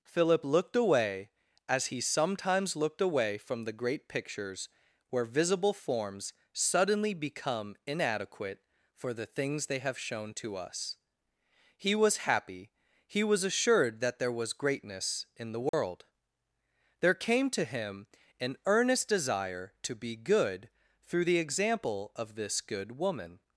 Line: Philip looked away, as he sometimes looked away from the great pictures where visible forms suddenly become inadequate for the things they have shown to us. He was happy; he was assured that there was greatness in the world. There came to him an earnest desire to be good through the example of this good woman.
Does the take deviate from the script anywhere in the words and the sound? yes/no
yes